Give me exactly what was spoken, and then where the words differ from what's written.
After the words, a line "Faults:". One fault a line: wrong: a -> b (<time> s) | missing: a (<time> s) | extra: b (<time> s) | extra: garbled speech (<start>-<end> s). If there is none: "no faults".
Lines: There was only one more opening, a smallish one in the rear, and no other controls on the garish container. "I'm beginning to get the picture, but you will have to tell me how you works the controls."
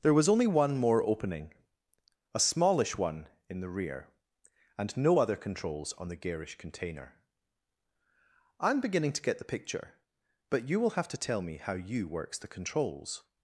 There was only one more opening, a smallish one in the rear, and no other controls on the garish container. "I'm beginning to get the picture, but you will have to tell me how you works the controls."
Faults:
no faults